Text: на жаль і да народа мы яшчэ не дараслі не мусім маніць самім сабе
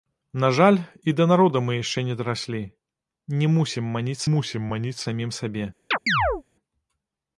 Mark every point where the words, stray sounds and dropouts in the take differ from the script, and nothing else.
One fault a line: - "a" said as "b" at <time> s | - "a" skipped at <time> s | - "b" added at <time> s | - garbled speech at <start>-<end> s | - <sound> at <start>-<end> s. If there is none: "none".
- "мусім маніць" added at 4.4 s
- chirp at 5.9-6.4 s